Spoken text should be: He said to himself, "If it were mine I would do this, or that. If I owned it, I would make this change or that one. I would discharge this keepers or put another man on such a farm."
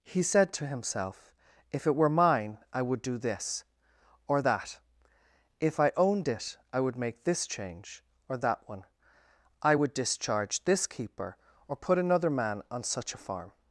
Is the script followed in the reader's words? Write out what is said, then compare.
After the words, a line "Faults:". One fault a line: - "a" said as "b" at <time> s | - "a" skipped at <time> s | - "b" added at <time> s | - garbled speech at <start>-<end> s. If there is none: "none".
He said to himself, "If it were mine I would do this, or that. If I owned it, I would make this change or that one. I would discharge this keeper or put another man on such a farm."
Faults:
- "keepers" said as "keeper" at 10.9 s